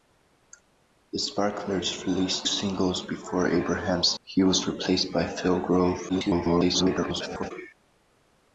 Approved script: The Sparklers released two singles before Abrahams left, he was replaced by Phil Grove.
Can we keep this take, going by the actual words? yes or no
no